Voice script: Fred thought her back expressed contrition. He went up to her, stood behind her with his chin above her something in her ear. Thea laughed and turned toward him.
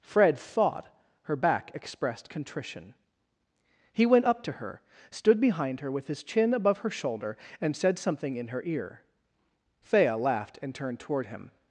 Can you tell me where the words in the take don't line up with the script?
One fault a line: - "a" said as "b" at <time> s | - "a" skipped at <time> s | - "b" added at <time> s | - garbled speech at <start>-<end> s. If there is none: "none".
- "shoulder and said" added at 6.9 s